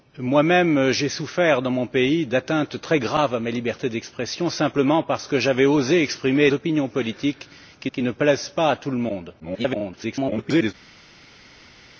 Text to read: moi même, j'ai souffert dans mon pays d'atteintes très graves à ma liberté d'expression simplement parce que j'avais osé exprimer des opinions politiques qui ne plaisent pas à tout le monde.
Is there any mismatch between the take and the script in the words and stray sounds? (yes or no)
yes